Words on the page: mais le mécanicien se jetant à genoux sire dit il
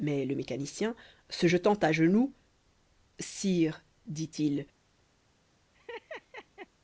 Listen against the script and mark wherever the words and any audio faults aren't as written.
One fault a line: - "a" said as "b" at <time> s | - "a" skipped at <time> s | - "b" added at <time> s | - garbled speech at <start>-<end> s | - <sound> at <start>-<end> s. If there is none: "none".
- laugh at 5.7-6.7 s